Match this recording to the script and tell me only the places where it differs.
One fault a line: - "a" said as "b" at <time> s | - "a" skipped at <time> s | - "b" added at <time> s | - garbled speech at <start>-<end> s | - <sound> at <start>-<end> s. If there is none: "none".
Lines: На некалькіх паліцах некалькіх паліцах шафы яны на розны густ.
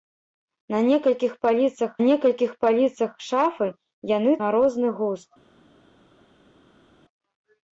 none